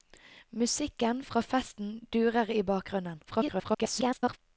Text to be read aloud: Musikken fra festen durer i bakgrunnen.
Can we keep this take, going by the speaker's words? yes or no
no